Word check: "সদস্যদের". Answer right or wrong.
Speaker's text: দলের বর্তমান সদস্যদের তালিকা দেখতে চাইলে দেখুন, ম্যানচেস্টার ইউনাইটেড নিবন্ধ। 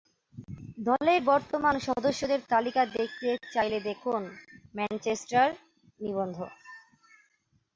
right